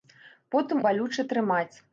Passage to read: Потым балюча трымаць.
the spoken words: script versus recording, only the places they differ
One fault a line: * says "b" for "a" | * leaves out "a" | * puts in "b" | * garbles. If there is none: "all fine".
all fine